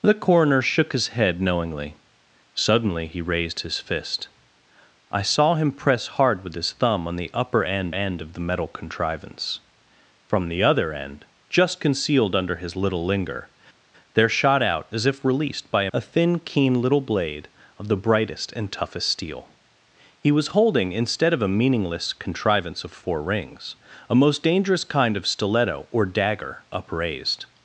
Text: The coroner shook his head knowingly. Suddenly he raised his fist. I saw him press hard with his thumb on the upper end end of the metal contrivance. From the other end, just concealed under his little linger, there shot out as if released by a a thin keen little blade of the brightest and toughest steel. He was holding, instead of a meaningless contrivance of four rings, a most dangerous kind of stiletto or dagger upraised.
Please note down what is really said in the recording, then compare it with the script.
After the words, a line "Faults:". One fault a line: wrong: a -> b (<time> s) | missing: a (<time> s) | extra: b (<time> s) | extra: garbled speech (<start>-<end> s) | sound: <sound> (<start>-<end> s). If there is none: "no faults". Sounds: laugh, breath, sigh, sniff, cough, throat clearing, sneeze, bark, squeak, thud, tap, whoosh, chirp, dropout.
The coroner shook his head knowingly. Suddenly he raised his fist. I saw him press hard with his thumb on the upper end end of the metal contrivance. From the other end, just concealed under his little linger, there shot out as if released by a a thin keen little blade of the brightest and toughest steel. He was holding, instead of a meaningless contrivance of four rings, a most dangerous kind of stiletto or dagger upraised.
Faults:
no faults